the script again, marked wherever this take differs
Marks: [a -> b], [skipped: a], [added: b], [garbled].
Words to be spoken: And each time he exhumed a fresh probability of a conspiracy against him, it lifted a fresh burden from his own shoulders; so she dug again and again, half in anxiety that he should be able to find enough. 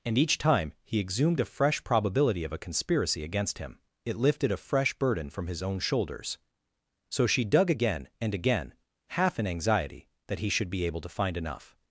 And each time he exhumed a fresh probability of a conspiracy against him, it lifted a fresh burden from his own shoulders; so she dug again and again, half in anxiety that he should be able to find enough.